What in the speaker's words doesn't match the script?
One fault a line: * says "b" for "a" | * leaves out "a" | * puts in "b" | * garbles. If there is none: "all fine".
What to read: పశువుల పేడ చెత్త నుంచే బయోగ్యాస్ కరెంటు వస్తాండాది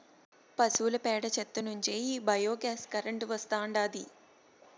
* puts in "ఈ"